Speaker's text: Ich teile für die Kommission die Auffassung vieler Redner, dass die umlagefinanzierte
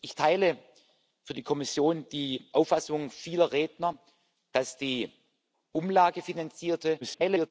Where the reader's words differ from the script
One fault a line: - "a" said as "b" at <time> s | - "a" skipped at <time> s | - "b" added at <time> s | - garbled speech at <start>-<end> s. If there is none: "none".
- garbled speech at 7.0-7.5 s